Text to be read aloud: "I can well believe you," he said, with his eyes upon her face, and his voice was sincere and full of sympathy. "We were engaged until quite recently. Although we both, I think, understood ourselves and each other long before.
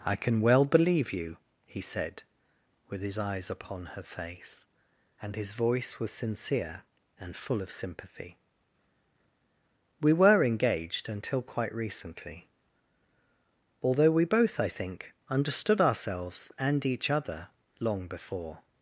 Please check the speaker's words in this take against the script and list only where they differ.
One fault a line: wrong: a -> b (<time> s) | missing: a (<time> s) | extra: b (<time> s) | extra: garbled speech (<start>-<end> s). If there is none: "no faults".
no faults